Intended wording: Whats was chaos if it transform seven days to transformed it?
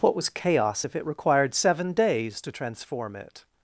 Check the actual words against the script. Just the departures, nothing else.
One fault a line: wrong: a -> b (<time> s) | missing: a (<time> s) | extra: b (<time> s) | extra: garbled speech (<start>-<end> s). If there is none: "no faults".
wrong: Whats -> What (0.0 s)
wrong: transform -> required (1.0 s)
wrong: transformed -> transform (2.5 s)